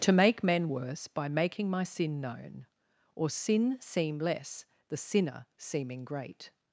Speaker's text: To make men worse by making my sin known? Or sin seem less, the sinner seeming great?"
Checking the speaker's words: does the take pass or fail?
pass